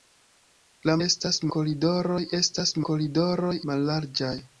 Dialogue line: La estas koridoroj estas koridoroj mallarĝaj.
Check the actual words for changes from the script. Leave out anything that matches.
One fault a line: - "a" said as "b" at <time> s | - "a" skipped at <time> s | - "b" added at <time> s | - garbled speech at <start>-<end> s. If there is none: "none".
none